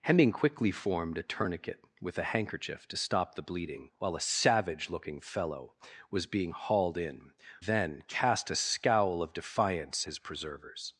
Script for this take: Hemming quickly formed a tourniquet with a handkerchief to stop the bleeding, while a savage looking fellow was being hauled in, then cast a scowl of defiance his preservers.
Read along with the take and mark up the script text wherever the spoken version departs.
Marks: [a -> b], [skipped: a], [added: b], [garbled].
Hemming quickly formed a tourniquet with a handkerchief to stop the bleeding, while a savage looking fellow was being hauled in, then cast a scowl of defiance his preservers.